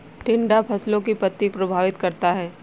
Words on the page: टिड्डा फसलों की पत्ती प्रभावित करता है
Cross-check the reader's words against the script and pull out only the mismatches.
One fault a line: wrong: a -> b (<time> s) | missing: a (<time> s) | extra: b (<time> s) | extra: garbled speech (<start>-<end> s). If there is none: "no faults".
no faults